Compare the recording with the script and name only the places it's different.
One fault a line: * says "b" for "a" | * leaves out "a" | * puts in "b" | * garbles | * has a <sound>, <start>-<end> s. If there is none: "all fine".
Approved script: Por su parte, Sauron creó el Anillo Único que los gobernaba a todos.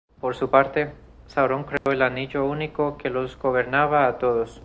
* has a dropout, 1.8-1.9 s